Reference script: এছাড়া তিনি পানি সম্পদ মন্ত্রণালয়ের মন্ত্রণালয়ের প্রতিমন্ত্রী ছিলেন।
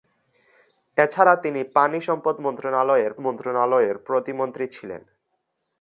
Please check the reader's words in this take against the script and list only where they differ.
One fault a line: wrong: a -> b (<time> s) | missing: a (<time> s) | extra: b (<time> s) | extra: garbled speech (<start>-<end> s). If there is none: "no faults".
no faults